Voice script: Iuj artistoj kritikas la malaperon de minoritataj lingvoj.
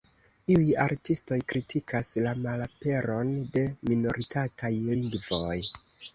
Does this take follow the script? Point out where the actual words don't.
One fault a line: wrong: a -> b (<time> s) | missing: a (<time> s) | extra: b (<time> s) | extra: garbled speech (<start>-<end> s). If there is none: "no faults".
no faults